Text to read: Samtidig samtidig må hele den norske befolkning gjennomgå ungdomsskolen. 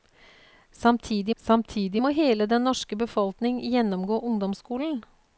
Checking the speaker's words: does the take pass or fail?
pass